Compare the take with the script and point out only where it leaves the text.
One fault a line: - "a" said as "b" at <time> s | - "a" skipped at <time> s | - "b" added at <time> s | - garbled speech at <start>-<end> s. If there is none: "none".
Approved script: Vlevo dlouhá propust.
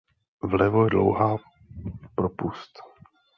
none